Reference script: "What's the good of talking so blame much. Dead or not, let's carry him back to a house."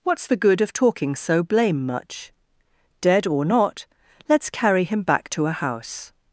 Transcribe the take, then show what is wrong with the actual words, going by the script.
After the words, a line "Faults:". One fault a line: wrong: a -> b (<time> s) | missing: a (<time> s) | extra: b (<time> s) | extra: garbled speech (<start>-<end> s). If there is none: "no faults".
"What's the good of talking so blame much. Dead or not, let's carry him back to a house."
Faults:
no faults